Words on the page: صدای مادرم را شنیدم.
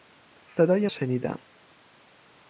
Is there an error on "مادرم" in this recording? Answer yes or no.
yes